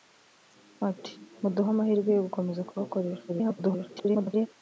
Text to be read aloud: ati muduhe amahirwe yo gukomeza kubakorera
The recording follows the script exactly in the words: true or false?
false